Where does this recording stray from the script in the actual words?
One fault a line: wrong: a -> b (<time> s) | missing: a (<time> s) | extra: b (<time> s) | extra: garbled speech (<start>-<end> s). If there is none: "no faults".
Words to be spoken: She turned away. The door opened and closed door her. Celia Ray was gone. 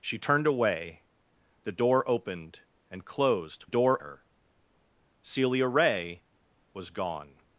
no faults